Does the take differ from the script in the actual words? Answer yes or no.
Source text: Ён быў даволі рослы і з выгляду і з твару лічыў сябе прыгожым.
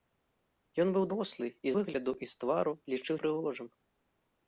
yes